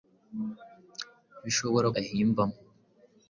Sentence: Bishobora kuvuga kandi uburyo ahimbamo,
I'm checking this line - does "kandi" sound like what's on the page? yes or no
no